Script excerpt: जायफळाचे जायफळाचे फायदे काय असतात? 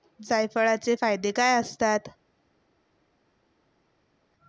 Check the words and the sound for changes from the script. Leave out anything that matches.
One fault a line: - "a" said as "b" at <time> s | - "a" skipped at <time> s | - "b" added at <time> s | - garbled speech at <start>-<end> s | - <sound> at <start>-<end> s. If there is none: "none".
- "जायफळाचे" skipped at 0.9 s